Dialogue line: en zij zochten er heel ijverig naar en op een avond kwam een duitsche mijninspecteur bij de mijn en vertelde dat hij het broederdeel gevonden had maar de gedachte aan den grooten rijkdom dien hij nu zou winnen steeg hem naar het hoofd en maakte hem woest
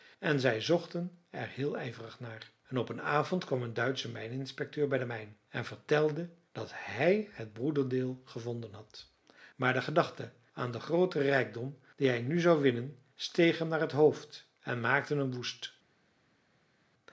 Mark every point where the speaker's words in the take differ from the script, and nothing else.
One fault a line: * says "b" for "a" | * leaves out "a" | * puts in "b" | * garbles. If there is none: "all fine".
all fine